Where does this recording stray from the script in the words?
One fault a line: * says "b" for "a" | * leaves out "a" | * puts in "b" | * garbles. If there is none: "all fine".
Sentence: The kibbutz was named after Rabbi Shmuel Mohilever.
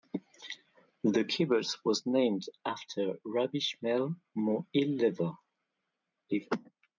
all fine